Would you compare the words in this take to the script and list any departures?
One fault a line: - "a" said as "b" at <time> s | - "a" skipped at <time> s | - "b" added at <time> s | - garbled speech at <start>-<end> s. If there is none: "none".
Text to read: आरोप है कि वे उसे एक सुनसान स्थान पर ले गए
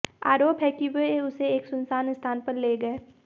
none